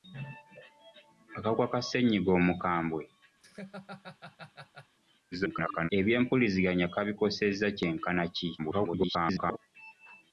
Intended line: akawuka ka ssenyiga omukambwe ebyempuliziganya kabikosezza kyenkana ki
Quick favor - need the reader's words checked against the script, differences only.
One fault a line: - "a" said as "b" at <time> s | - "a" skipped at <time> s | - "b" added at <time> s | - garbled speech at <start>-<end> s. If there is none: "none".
- garbled speech at 5.3-5.9 s
- garbled speech at 8.6-9.6 s